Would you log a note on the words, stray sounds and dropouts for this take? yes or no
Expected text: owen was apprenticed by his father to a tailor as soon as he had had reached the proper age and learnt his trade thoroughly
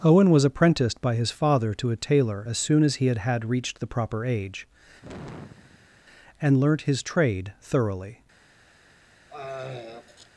yes